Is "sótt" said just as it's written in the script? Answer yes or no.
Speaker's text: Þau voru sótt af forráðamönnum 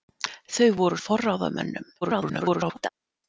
no